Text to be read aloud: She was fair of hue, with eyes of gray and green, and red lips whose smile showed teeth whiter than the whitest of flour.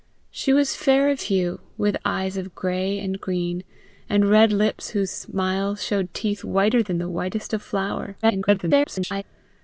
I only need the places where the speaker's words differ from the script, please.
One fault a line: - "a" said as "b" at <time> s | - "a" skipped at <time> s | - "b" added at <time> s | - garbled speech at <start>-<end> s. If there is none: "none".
- garbled speech at 8.2-9.2 s